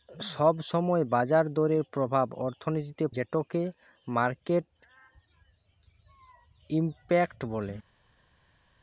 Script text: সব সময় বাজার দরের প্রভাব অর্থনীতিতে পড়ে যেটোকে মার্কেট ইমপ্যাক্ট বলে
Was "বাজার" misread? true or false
false